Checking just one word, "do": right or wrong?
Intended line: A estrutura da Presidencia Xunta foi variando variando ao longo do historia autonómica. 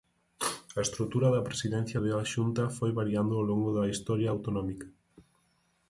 wrong